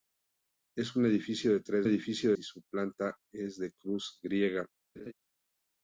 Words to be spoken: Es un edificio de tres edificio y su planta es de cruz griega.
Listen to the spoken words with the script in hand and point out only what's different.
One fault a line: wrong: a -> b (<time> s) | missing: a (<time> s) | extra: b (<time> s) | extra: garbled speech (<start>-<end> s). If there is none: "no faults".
no faults